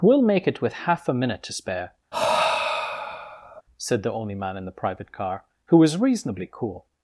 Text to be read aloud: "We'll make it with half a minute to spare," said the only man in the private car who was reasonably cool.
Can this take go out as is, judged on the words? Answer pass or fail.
pass